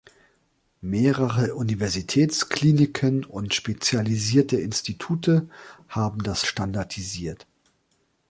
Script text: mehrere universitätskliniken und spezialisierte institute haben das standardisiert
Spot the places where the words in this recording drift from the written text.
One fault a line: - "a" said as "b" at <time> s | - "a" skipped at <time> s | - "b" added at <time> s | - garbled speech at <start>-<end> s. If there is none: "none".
none